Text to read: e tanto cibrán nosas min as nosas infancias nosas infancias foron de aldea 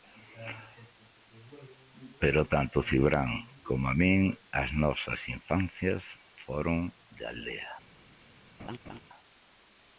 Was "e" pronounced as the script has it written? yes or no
no